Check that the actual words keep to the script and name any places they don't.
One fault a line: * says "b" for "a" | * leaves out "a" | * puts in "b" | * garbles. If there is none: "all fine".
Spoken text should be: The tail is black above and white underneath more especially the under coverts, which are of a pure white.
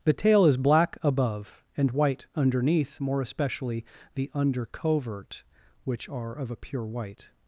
* says "covert" for "coverts"